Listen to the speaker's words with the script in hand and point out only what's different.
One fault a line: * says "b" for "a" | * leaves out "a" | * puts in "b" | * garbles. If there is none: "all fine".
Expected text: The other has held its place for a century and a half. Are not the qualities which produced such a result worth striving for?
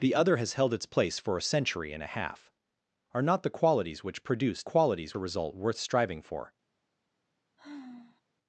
* says "qualities" for "such"